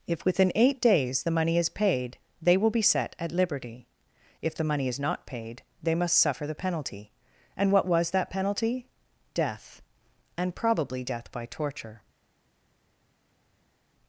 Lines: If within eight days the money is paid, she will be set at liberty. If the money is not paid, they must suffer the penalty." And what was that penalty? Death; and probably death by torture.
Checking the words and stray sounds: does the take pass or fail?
fail